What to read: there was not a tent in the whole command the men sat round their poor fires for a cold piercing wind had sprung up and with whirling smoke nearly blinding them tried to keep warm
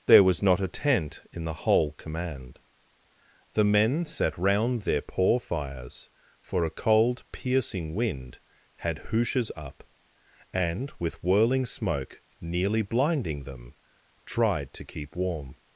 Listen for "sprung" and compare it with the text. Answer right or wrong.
wrong